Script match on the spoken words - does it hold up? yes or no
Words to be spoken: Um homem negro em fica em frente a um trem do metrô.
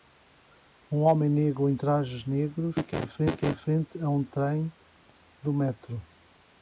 no